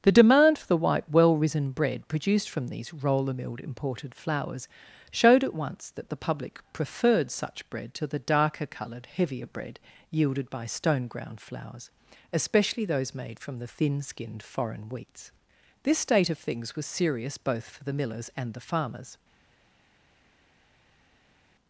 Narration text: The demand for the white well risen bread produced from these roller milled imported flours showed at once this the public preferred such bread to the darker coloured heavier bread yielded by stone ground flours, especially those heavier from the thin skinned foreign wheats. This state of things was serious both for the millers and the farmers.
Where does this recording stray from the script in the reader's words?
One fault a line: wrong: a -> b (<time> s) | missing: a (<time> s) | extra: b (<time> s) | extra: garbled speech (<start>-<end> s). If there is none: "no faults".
wrong: this -> that (5.9 s)
wrong: heavier -> made (13.1 s)